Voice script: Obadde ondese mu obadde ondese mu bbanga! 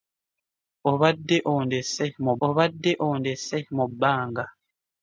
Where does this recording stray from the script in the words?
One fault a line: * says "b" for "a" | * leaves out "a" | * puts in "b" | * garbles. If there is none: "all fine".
all fine